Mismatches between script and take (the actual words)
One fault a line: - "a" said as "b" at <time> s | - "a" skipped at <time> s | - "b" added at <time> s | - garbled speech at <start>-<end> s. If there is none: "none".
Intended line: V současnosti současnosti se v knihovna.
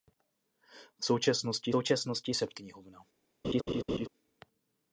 none